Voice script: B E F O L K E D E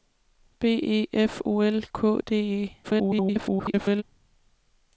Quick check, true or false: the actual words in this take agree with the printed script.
false